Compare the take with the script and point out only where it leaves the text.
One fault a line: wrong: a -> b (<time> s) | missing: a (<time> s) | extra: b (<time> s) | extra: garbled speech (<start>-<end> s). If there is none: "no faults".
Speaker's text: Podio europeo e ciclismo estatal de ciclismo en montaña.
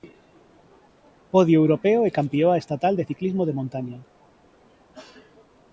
wrong: ciclismo -> campioa (2.2 s)
wrong: en -> de (3.4 s)